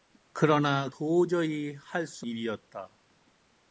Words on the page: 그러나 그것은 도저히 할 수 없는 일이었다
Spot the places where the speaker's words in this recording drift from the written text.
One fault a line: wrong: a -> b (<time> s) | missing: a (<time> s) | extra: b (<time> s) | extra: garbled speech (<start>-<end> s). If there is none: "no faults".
missing: 그것은 (0.9 s)
missing: 없는 (2.3 s)